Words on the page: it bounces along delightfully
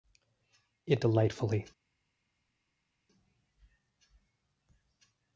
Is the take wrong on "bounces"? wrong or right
wrong